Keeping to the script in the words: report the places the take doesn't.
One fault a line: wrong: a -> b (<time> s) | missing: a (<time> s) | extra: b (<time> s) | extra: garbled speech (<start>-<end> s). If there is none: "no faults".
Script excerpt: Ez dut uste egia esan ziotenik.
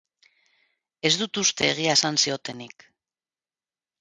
no faults